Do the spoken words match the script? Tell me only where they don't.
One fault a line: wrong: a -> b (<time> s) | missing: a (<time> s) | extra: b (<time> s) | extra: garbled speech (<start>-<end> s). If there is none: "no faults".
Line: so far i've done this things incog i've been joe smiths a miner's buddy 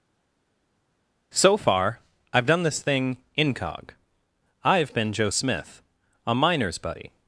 wrong: things -> thing (2.8 s)
wrong: smiths -> smith (5.3 s)